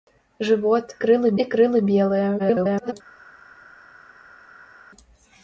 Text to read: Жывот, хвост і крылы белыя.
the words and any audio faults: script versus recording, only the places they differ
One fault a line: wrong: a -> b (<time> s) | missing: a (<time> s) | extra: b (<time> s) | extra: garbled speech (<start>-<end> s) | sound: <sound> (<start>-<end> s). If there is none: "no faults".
wrong: хвост -> крылы (1.0 s)
extra: garbled speech (2.4-2.9 s)